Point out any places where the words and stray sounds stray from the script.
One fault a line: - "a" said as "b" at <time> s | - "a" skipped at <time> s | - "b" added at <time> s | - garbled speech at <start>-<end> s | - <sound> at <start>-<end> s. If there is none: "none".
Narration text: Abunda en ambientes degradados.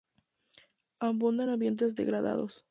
none